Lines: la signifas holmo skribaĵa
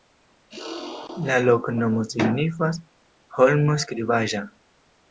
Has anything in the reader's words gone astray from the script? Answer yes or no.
yes